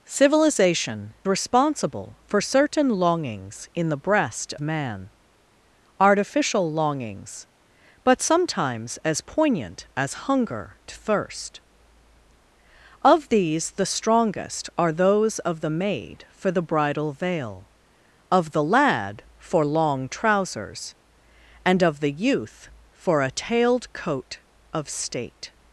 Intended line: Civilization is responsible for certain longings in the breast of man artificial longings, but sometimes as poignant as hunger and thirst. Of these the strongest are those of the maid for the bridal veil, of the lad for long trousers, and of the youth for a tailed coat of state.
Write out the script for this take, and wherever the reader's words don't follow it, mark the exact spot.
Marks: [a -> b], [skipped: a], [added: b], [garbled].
Civilization [skipped: is] responsible for certain longings in the breast [skipped: of] man artificial longings, but sometimes as poignant as hunger [skipped: and] thirst. Of these the strongest are those of the maid for the bridal veil, of the lad for long trousers, and of the youth for a tailed coat of state.